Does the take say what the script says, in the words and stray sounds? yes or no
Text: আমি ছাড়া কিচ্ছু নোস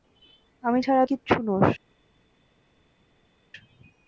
yes